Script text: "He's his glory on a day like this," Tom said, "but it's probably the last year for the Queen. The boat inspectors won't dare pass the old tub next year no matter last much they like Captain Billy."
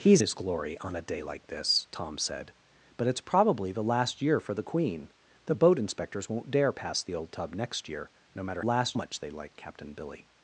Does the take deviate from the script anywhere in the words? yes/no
no